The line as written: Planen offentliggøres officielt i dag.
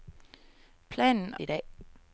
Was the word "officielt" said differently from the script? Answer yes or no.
yes